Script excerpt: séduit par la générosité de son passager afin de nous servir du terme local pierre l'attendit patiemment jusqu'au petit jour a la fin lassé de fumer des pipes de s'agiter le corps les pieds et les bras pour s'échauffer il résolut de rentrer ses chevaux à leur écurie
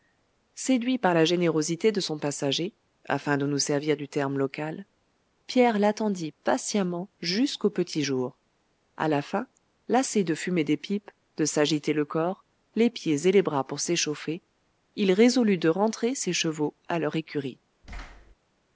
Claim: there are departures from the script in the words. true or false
false